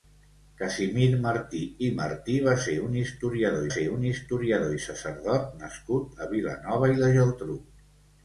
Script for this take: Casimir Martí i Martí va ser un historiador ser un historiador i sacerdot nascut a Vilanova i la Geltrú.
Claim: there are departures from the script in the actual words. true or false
false